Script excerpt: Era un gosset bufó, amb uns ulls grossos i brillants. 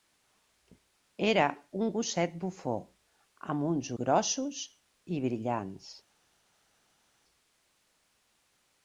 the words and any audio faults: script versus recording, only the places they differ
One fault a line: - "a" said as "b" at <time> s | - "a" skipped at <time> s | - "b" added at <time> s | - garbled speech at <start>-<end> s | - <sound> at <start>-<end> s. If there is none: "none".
- "ulls" skipped at 3.9 s